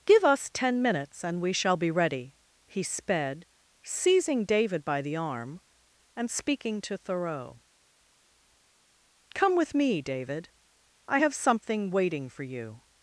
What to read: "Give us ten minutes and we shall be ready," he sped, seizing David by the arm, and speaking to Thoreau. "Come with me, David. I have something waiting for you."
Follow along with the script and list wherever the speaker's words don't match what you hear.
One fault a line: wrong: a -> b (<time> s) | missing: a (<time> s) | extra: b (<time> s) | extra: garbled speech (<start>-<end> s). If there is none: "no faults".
no faults